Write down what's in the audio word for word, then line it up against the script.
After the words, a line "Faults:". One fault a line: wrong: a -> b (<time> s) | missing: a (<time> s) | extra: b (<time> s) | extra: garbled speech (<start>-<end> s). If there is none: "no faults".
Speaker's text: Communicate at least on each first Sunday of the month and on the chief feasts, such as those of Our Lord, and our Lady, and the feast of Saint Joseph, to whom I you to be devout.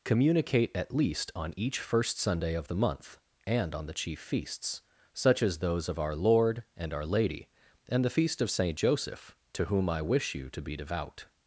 Communicate at least on each first Sunday of the month and on the chief feasts, such as those of Our Lord, and our Lady, and the feast of Saint Joseph, to whom I wish you to be devout.
Faults:
extra: wish (10.0 s)